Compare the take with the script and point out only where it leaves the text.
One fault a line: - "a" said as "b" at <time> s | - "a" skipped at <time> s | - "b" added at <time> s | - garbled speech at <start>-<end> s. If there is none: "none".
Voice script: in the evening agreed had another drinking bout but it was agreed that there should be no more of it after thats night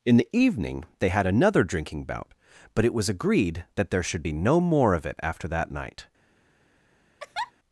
- "agreed" said as "they" at 1.0 s
- "thats" said as "that" at 5.5 s